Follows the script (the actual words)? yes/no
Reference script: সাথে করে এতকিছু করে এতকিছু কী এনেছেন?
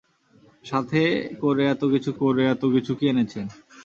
yes